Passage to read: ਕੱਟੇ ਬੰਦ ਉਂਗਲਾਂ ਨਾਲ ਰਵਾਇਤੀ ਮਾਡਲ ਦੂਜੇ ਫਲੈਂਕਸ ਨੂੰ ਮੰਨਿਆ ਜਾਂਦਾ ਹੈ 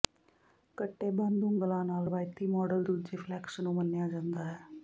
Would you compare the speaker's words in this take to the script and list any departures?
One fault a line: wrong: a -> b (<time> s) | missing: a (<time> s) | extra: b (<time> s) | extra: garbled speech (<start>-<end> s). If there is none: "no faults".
no faults